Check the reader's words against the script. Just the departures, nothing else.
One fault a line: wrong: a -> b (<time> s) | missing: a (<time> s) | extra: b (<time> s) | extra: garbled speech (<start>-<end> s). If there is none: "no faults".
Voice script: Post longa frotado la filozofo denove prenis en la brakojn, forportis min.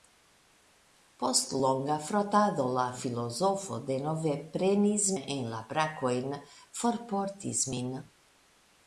no faults